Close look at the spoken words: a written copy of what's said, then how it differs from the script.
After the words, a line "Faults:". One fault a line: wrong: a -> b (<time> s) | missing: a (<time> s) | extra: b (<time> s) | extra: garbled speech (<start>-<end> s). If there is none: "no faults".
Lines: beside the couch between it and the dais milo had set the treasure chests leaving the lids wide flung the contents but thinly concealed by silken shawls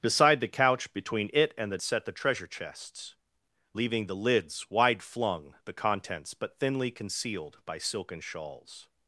beside the couch between it and the set the treasure chests leaving the lids wide flung the contents but thinly concealed by silken shawls
Faults:
missing: dais milo had (1.8 s)